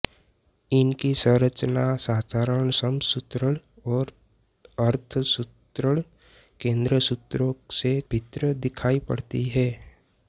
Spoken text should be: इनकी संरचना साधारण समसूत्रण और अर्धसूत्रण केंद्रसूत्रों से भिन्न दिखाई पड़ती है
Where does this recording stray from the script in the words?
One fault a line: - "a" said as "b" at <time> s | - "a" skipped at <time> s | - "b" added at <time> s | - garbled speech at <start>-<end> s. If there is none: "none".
none